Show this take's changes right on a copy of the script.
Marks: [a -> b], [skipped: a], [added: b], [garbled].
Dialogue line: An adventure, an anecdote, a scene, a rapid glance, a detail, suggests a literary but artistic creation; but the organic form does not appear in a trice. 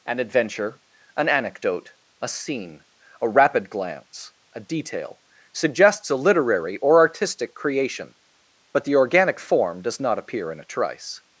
An adventure, an anecdote, a scene, a rapid glance, a detail, suggests a literary [but -> or] artistic creation; but the organic form does not appear in a trice.